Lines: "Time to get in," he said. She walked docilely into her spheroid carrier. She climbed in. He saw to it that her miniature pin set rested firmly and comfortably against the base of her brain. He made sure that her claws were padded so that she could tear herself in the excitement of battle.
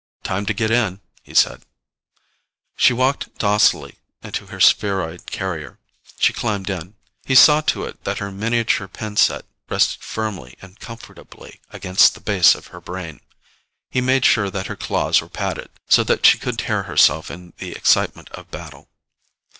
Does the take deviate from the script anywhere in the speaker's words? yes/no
no